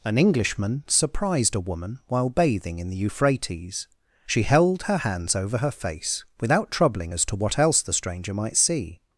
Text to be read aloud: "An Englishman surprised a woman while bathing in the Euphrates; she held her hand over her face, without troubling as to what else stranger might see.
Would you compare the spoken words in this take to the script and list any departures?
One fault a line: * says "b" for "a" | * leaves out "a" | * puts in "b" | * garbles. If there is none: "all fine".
* says "hands" for "hand"
* puts in "the"